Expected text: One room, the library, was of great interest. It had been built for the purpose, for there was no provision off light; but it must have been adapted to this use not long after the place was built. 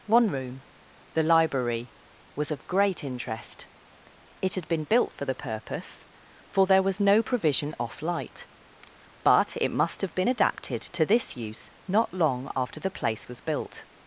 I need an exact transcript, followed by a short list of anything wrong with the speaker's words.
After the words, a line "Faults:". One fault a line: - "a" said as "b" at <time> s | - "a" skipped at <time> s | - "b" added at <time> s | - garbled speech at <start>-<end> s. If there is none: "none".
One room, the library, was of great interest. It had been built for the purpose, for there was no provision off light; but it must have been adapted to this use not long after the place was built.
Faults:
none